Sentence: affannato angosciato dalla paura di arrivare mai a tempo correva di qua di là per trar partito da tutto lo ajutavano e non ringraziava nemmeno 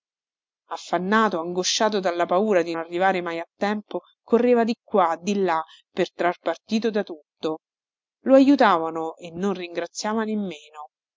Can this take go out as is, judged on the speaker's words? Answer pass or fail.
pass